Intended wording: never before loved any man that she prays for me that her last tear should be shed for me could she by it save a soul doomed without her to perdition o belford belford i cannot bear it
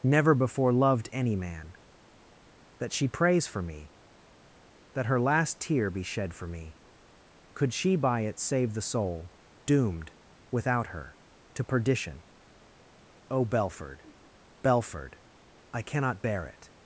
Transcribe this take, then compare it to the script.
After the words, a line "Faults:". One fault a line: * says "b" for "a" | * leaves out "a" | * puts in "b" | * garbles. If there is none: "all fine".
never before loved any man that she prays for me that her last tear be shed for me could she by it save the soul doomed without her to perdition o belford belford i cannot bear it
Faults:
* leaves out "should"
* says "the" for "a"